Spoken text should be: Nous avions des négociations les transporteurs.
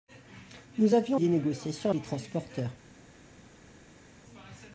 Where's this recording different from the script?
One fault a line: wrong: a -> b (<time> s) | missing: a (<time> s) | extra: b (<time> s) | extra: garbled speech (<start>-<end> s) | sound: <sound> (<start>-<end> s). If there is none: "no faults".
no faults